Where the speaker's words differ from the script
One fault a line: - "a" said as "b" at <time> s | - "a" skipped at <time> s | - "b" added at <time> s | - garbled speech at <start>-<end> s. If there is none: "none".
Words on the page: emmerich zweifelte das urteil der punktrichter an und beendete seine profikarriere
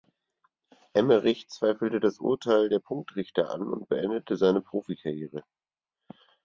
none